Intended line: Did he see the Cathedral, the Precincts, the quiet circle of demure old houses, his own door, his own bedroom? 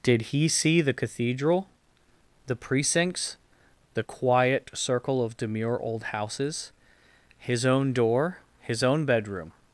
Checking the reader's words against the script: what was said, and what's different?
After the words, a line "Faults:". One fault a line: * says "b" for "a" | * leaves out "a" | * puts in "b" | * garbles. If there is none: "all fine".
Did he see the Cathedral, the Precincts, the quiet circle of demure old houses, his own door, his own bedroom?
Faults:
all fine